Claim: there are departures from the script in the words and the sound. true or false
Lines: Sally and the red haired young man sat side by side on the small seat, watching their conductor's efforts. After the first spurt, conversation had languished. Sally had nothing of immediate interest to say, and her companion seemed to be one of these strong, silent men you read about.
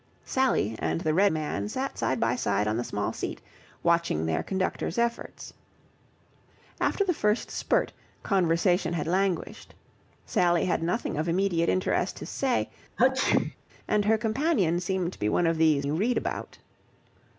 true